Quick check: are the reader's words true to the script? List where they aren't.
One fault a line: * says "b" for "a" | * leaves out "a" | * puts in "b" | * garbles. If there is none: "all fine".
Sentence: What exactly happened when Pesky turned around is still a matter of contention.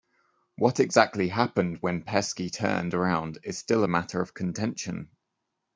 all fine